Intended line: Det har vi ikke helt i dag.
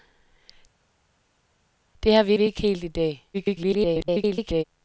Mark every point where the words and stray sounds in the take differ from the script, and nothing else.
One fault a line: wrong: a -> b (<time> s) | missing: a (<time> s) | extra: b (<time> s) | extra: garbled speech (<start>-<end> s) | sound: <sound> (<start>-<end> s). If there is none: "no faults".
extra: vi (2.3 s)
extra: garbled speech (3.3-4.6 s)